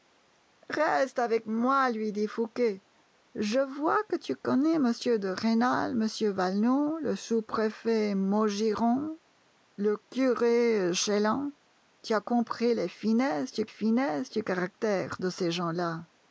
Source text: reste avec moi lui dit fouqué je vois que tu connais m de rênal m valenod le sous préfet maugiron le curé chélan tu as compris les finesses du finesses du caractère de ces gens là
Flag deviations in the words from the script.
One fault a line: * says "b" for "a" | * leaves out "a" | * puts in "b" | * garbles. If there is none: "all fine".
all fine